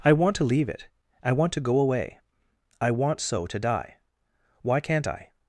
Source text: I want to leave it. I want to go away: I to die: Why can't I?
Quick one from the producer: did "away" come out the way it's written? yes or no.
yes